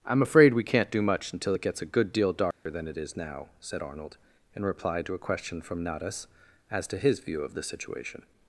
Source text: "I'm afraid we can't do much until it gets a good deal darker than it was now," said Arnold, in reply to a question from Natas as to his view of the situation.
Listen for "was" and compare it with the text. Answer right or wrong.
wrong